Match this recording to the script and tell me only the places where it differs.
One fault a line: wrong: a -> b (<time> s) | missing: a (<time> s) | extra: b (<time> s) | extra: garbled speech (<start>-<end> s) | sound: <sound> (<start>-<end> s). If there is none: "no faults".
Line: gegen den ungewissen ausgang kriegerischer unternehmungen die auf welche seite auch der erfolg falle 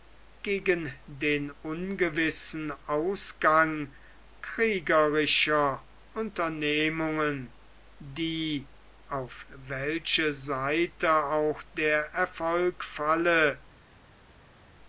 no faults